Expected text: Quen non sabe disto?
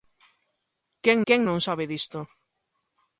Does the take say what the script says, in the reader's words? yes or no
no